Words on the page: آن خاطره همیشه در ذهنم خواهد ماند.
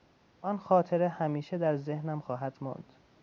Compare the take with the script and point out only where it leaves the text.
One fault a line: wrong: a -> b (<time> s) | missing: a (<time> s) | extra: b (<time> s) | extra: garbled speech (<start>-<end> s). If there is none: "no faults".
no faults